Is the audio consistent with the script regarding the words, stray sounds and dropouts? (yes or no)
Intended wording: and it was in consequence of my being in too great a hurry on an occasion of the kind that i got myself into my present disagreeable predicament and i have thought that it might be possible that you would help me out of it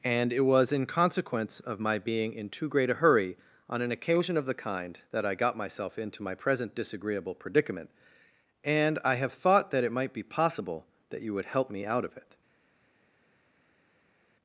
yes